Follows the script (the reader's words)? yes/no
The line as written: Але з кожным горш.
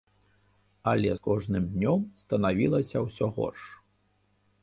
no